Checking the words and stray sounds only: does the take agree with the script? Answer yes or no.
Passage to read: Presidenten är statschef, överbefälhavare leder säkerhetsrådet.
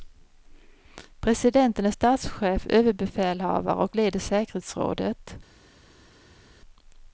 no